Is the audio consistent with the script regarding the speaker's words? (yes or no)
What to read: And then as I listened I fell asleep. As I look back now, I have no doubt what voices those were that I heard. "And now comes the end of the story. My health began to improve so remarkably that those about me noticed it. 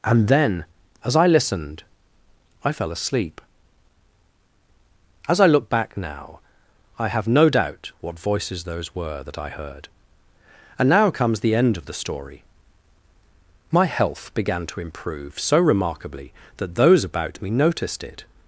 yes